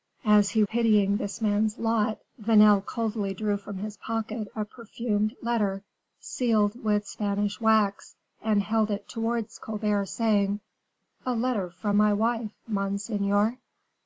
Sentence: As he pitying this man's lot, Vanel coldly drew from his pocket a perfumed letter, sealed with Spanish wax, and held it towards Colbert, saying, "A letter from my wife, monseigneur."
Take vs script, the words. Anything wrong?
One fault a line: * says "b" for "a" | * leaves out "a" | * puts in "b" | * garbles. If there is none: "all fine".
all fine